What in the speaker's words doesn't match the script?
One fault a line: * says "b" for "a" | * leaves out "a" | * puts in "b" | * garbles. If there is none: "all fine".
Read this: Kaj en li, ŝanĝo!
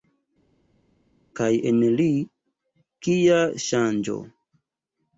* puts in "kia"